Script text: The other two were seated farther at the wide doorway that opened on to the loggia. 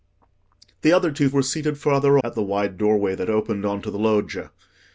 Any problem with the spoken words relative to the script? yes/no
no